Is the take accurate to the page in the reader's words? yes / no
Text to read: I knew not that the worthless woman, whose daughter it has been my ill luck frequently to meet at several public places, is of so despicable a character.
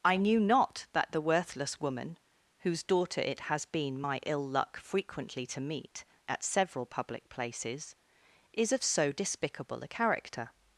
yes